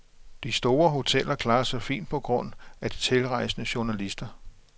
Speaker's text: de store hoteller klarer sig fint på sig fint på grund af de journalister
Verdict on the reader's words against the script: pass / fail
fail